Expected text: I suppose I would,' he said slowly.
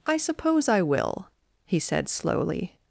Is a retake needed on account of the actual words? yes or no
yes